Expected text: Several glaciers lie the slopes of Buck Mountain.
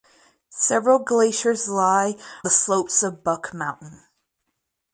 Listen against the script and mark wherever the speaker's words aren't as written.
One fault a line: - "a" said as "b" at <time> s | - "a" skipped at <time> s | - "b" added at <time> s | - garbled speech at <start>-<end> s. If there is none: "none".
none